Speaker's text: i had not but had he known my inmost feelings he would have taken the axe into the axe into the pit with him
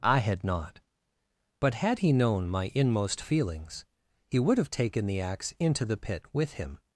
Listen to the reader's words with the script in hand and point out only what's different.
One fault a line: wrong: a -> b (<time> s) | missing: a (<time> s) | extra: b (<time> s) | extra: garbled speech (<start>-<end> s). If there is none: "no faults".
missing: axe into the (6.0 s)